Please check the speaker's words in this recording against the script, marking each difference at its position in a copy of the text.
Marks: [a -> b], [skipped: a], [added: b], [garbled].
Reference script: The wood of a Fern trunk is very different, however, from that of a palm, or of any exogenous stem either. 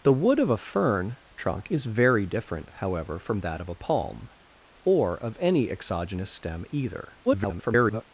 The wood of a Fern trunk is very different, however, from that of a palm, or of any exogenous stem either. [garbled]